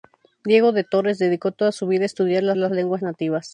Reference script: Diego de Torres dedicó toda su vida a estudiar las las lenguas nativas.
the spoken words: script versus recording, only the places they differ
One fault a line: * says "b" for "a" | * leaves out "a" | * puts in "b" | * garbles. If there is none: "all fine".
all fine